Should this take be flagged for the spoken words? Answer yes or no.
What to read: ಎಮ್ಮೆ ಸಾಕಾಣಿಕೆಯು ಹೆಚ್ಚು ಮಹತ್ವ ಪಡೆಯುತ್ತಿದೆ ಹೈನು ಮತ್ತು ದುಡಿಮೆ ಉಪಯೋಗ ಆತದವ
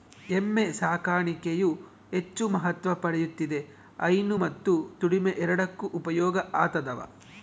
yes